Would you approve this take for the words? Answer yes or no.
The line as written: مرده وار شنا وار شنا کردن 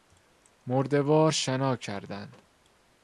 no